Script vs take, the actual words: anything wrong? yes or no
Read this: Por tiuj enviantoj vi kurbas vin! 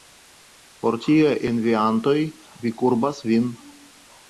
no